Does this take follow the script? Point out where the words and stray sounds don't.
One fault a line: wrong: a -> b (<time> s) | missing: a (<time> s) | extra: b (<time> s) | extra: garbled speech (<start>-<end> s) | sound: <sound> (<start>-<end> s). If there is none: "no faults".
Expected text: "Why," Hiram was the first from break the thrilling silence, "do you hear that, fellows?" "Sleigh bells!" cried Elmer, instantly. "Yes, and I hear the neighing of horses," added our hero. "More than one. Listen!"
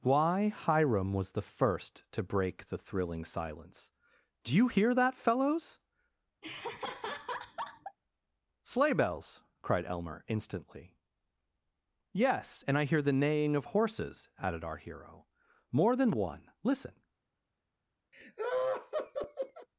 wrong: from -> to (2.1 s)
sound: laugh (6.4-8.0 s)
sound: laugh (18.1-19.7 s)